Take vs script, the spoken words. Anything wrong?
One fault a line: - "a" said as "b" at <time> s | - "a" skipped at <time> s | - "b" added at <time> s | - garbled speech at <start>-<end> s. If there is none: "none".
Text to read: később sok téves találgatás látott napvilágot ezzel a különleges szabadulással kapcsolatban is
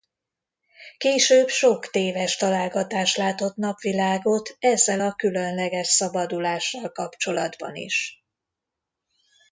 none